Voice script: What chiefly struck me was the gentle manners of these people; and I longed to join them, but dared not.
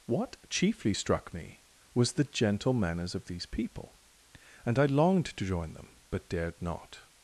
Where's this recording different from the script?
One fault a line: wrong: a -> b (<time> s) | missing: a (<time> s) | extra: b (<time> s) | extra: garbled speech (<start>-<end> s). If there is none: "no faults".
no faults